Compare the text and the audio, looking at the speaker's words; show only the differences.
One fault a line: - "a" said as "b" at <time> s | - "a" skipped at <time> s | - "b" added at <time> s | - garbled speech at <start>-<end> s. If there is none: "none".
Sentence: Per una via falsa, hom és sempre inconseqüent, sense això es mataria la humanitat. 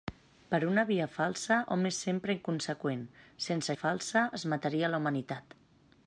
- "això" said as "falsa" at 3.8 s